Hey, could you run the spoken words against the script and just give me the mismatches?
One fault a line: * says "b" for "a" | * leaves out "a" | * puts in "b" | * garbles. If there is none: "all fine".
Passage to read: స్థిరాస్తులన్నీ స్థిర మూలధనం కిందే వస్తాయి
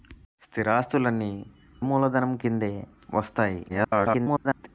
* leaves out "స్థిర"
* garbles